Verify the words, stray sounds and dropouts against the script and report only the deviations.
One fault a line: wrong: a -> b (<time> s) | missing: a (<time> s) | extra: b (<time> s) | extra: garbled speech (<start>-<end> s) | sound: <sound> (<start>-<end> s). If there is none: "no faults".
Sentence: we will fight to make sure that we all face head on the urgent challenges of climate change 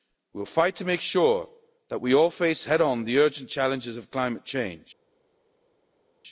no faults